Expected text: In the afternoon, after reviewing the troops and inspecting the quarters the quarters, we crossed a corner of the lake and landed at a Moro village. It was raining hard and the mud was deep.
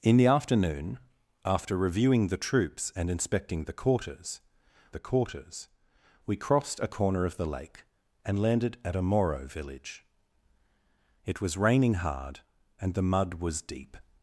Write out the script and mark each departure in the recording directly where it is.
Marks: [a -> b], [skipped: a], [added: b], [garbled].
In the afternoon, after reviewing the troops and inspecting the quarters the quarters, we crossed a corner of the lake and landed at a Moro village. It was raining hard and the mud was deep.